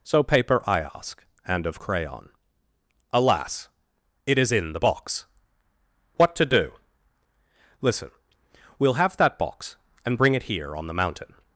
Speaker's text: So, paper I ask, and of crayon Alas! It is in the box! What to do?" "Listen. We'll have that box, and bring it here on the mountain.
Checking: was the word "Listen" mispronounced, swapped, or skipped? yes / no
no